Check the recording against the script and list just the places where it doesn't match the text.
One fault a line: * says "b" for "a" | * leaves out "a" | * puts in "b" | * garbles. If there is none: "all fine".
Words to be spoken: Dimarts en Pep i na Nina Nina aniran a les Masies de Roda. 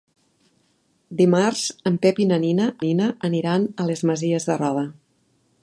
all fine